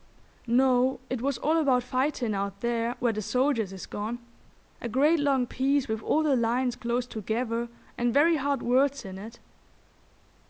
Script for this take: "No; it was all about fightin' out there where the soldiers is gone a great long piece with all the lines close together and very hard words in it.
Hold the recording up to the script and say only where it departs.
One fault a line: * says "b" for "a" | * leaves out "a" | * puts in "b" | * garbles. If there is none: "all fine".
all fine